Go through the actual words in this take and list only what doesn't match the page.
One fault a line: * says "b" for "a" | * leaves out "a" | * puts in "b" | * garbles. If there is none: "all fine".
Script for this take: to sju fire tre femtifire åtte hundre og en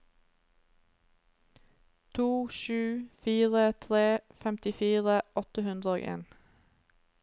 all fine